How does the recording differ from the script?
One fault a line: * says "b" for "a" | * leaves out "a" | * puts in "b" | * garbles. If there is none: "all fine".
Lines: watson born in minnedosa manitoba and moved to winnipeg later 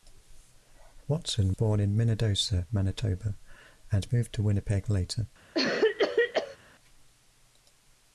all fine